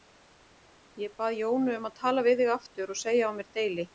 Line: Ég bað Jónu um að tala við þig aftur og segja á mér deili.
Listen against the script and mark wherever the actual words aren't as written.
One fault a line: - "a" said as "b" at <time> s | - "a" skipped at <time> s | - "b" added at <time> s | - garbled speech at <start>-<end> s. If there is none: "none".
none